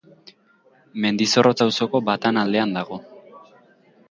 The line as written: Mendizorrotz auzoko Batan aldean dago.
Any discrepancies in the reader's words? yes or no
no